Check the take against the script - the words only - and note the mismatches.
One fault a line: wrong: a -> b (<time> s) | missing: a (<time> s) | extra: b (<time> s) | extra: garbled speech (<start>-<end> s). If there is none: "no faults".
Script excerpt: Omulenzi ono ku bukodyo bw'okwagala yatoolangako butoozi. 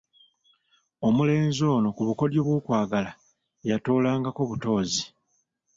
no faults